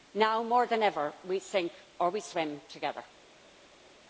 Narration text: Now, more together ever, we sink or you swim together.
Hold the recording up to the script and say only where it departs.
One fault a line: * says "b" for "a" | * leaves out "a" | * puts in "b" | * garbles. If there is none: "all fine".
* says "than" for "together"
* says "we" for "you"